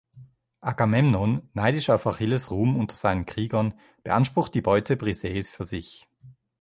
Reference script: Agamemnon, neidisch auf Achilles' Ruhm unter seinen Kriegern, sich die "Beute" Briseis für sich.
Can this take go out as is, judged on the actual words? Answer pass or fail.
fail